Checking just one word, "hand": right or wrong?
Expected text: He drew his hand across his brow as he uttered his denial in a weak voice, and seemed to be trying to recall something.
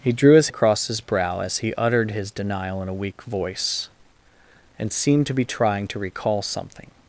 wrong